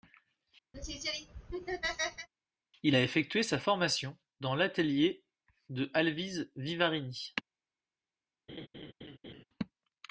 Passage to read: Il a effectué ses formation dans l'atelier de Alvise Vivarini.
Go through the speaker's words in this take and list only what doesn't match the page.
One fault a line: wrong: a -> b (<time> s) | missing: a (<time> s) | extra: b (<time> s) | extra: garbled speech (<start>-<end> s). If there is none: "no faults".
wrong: ses -> sa (3.4 s)